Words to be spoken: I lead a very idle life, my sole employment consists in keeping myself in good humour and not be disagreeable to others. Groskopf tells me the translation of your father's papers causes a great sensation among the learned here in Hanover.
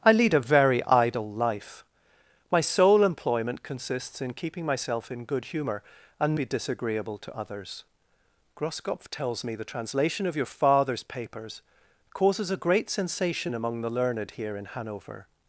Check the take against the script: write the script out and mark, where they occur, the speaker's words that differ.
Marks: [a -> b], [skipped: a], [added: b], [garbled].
I lead a very idle life, my sole employment consists in keeping myself in good humour and [skipped: not] be disagreeable to others. Groskopf tells me the translation of your father's papers causes a great sensation among the learned here in Hanover.